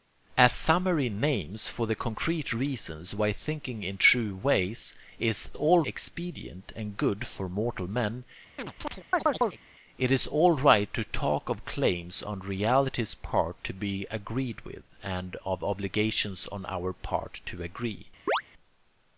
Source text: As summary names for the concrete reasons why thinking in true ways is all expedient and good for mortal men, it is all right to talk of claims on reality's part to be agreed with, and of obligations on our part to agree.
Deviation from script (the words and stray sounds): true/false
true